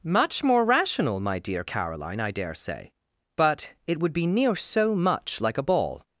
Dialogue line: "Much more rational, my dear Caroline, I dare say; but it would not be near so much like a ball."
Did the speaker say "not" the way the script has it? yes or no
no